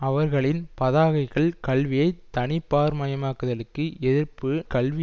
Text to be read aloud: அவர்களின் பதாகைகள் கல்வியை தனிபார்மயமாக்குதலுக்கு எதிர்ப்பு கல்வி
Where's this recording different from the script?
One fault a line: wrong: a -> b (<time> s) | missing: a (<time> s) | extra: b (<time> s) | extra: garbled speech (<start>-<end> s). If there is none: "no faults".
no faults